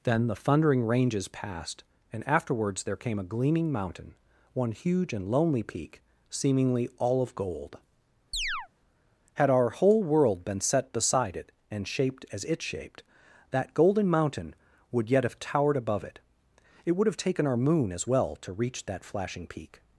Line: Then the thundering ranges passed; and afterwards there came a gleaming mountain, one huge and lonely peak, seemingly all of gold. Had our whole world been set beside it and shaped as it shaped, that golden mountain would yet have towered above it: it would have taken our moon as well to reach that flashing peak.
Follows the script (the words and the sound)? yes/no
no